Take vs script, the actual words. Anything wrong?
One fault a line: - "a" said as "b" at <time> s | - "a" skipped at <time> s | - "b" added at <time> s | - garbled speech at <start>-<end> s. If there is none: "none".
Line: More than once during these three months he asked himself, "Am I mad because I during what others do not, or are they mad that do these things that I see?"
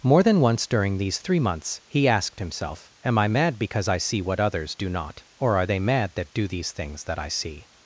- "during" said as "see" at 4.0 s